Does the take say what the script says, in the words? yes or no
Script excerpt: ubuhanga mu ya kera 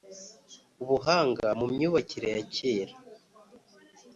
no